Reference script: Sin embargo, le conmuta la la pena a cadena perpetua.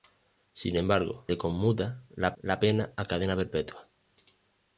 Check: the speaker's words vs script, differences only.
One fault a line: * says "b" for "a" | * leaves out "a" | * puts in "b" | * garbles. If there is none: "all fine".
all fine